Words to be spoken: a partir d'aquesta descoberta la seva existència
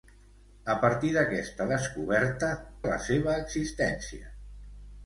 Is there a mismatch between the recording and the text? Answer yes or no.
no